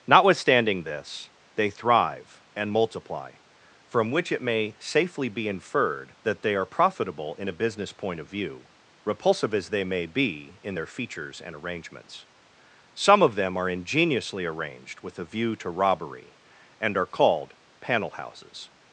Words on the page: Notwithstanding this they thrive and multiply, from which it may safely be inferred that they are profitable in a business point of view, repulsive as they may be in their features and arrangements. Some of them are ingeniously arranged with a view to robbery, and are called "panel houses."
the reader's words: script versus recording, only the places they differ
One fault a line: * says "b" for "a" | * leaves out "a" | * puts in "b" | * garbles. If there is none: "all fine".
all fine